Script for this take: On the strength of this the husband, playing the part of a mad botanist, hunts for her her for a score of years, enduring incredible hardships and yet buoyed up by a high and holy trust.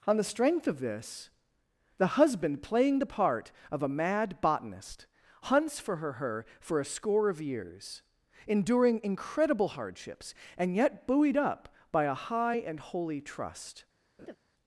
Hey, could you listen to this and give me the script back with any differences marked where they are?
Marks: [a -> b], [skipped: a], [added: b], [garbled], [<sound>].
On the strength of this the husband, playing the part of a mad botanist, hunts for her her for a score of years, enduring incredible hardships and yet buoyed up by a high and holy trust. [laugh]